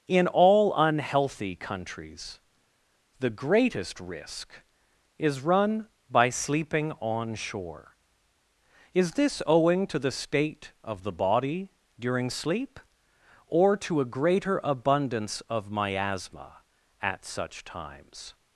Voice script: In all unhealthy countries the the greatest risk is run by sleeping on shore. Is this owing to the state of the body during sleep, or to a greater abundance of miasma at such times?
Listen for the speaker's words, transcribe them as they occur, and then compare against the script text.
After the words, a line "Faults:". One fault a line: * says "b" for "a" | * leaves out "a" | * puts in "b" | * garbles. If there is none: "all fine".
In all unhealthy countries the greatest risk is run by sleeping on shore. Is this owing to the state of the body during sleep, or to a greater abundance of miasma at such times?
Faults:
* leaves out "the"